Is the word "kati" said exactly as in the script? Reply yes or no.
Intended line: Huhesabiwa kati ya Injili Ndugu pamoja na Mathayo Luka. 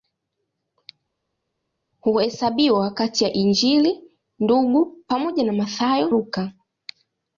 yes